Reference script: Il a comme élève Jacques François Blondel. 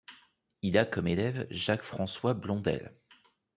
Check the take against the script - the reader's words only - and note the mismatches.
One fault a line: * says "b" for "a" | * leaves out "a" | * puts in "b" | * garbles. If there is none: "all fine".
all fine